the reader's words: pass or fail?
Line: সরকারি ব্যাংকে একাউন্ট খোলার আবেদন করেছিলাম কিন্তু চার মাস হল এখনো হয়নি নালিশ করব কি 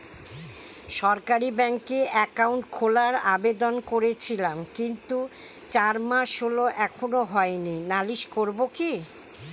pass